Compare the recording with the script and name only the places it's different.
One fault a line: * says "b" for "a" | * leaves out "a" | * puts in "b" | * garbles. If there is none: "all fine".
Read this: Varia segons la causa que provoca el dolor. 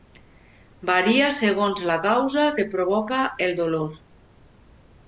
all fine